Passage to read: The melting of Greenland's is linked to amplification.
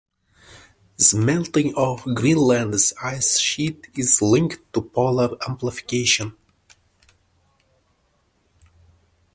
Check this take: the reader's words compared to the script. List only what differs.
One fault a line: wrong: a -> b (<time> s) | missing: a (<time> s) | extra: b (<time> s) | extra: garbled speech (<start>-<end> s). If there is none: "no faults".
extra: ice sheet (3.0 s)
extra: polar (4.8 s)